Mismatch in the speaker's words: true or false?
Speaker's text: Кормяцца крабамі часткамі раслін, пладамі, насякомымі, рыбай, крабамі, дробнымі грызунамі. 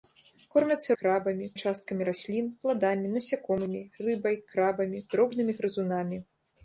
false